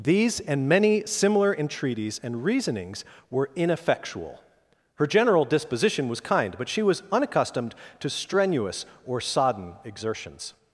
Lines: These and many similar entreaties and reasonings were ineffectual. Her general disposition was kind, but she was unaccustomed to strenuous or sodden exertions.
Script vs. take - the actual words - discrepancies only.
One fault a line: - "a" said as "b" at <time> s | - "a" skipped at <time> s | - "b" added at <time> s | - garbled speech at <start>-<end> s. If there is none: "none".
none